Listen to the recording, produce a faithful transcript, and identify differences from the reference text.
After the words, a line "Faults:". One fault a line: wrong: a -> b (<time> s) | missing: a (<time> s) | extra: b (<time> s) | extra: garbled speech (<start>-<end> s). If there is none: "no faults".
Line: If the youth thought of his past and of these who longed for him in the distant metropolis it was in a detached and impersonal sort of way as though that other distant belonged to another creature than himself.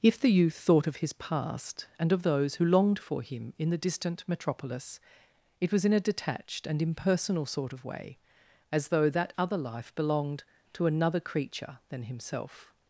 If the youth thought of his past and of those who longed for him in the distant metropolis it was in a detached and impersonal sort of way as though that other life belonged to another creature than himself.
Faults:
wrong: these -> those (2.2 s)
wrong: distant -> life (9.6 s)